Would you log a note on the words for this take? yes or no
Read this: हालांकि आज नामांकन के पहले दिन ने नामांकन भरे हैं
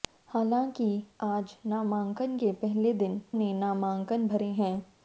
no